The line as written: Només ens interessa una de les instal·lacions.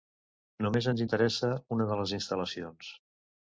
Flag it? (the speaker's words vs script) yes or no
no